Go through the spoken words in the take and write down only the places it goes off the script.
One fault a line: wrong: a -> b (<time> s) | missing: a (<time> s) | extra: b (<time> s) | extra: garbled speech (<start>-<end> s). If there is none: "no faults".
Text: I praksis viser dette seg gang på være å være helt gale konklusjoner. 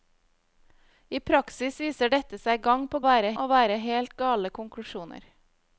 no faults